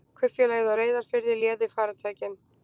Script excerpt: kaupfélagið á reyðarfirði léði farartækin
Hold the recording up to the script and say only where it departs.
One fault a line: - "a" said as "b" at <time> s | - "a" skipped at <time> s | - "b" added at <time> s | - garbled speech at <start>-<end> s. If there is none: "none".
none